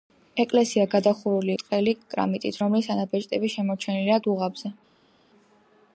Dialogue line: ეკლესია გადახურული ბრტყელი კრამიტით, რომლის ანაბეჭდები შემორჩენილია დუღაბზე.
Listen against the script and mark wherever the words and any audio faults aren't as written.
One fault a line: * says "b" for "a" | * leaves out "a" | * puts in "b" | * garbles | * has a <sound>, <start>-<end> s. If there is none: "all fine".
all fine